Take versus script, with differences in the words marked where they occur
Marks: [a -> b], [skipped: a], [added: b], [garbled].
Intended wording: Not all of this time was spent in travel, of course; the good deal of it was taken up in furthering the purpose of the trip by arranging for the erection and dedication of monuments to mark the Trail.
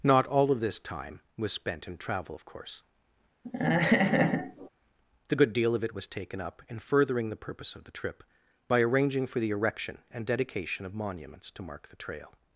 Not all of this time was spent in travel, of course; the good deal of it was taken up in furthering the purpose of the trip by arranging for the erection and dedication of monuments to mark the Trail.